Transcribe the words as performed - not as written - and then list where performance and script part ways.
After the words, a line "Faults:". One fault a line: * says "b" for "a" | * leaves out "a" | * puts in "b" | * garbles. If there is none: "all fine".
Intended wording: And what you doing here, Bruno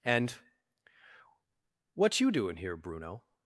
And what you doing here, Bruno
Faults:
all fine